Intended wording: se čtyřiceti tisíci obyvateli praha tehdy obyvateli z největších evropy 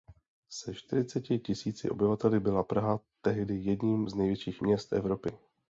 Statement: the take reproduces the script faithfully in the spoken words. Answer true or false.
false